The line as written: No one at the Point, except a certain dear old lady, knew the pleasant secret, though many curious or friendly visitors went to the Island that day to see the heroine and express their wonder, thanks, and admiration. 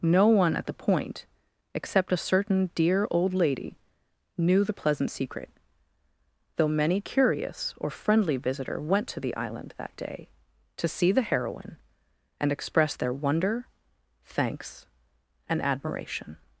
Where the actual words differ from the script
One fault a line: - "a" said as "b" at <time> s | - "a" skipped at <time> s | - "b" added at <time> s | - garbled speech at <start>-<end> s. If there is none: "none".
- "visitors" said as "visitor" at 8.4 s